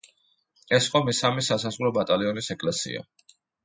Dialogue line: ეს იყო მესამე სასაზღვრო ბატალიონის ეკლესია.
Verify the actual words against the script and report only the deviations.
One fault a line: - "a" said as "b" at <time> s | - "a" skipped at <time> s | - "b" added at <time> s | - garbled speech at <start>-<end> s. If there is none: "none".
none